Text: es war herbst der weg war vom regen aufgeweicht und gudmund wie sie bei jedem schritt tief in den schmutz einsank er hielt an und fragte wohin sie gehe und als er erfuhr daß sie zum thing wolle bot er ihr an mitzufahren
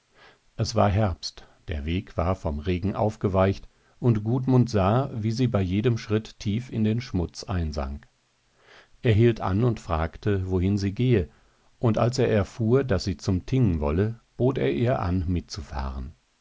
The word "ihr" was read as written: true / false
true